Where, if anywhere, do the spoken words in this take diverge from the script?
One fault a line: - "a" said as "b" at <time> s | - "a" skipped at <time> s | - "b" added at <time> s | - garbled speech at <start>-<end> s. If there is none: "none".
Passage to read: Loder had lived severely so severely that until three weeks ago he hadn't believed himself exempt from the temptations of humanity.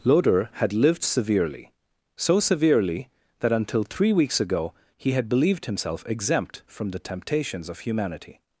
- "hadn't" said as "had" at 5.1 s